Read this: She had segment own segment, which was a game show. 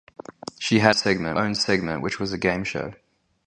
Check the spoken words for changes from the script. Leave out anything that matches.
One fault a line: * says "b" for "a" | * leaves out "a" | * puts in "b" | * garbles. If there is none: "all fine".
all fine